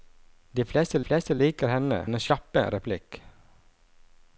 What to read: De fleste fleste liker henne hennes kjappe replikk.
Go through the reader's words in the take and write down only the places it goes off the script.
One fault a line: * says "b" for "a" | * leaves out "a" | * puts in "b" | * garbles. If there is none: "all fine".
all fine